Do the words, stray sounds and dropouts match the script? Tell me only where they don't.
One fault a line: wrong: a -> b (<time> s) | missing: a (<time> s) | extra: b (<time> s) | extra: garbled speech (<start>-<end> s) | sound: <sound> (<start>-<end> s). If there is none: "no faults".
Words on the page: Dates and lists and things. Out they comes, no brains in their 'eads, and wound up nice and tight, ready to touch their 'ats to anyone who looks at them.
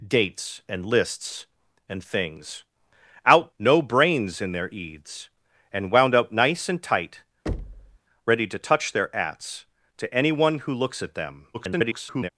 missing: they comes (3.5 s)
sound: thud (7.5-8.0 s)
extra: garbled speech (11.5-12.3 s)